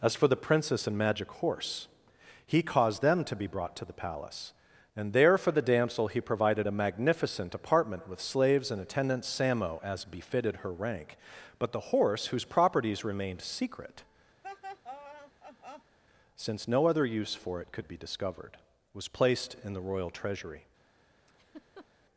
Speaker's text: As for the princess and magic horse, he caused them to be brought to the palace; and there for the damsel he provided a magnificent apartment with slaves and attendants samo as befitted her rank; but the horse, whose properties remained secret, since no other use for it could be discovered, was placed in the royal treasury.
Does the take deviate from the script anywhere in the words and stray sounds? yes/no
yes